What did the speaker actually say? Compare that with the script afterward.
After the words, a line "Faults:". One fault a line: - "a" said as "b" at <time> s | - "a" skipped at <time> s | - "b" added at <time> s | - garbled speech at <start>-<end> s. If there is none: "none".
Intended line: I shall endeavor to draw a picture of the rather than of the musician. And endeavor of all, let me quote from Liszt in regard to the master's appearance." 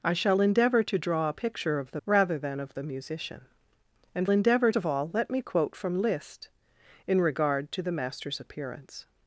I shall endeavor to draw a picture of the rather than of the musician. And endeavor of all, let me quote from Liszt in regard to the master's appearance."
Faults:
none